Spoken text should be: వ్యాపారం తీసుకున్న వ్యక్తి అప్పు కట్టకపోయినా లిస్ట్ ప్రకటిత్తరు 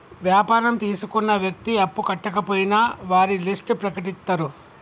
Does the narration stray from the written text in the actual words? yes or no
yes